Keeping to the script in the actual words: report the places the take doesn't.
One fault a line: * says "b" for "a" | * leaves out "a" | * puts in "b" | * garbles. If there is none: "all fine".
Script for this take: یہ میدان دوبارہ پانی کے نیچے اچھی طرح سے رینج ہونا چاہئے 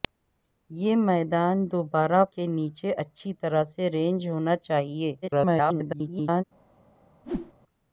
* leaves out "پانی"
* garbles